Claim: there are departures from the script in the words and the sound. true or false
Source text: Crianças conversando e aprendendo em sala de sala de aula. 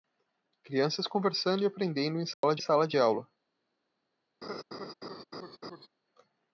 true